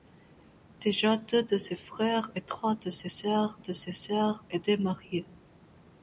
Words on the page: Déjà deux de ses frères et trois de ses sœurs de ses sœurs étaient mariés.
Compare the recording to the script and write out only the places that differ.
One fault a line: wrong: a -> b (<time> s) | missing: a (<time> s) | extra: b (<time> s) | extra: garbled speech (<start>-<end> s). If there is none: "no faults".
no faults